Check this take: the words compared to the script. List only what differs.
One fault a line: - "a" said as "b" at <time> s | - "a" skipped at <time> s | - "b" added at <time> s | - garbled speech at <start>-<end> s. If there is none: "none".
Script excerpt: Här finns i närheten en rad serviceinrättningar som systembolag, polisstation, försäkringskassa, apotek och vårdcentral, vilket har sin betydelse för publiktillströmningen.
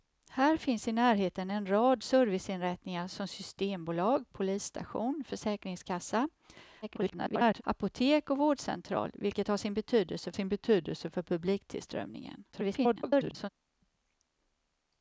- garbled speech at 6.8-7.6 s
- "sin betydelse" added at 10.3 s
- garbled speech at 12.5-13.5 s